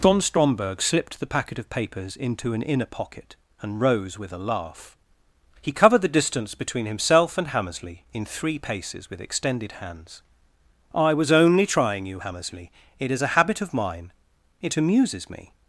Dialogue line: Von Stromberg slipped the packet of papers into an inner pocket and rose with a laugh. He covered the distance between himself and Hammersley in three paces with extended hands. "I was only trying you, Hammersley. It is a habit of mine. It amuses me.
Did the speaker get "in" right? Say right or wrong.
right